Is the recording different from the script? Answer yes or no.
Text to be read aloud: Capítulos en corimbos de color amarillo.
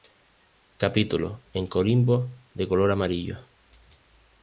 no